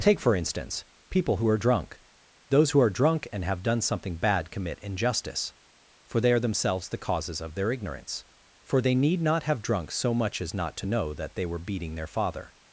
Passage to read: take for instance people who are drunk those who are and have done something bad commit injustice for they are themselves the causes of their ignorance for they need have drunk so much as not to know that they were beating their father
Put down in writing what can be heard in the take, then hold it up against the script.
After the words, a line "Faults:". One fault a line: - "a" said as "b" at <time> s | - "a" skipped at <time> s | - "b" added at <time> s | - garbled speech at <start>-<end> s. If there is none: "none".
take for instance people who are drunk those who are drunk and have done something bad commit injustice for they are themselves the causes of their ignorance for they need not have drunk so much as not to know that they were beating their father
Faults:
- "drunk" added at 2.9 s
- "not" added at 9.2 s